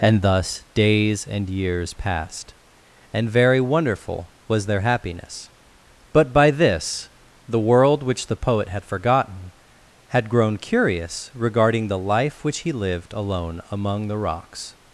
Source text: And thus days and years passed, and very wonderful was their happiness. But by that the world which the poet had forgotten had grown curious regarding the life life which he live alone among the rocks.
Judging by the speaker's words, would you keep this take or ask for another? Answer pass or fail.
fail